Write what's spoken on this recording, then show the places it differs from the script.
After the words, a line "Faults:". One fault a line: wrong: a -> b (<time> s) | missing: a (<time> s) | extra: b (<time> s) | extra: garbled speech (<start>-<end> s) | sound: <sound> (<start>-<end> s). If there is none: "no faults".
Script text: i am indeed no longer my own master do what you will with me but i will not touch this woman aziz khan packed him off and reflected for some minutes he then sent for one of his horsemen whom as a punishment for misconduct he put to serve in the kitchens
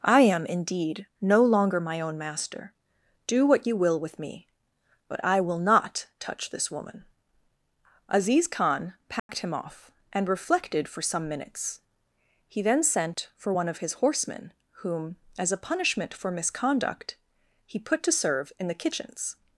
i am indeed no longer my own master do what you will with me but i will not touch this woman aziz khan packed him off and reflected for some minutes he then sent for one of his horsemen whom as a punishment for misconduct he put to serve in the kitchens
Faults:
sound: dropout (9.2-9.3 s)